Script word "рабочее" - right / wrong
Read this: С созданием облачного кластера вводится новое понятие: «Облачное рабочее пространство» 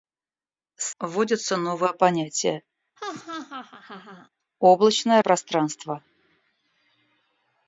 wrong